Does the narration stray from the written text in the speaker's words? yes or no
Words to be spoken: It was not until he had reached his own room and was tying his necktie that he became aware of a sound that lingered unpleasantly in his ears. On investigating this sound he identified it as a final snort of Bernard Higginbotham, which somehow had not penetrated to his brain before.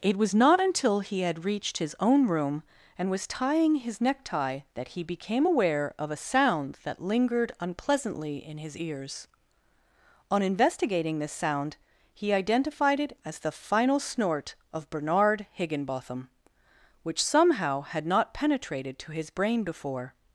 yes